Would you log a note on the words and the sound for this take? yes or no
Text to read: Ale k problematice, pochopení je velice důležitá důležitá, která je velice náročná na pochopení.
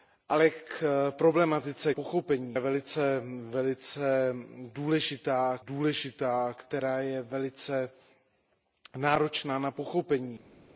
no